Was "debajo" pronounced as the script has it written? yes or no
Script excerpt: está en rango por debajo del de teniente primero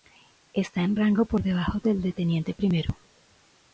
yes